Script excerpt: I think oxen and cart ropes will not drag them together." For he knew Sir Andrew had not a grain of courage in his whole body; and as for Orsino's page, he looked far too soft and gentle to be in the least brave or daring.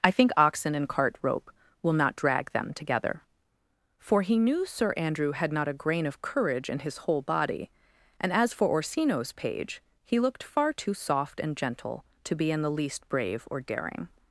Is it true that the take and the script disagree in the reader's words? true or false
true